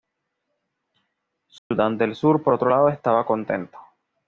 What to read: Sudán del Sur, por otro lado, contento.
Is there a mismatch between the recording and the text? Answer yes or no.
yes